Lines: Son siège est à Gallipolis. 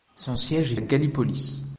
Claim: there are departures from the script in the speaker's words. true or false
false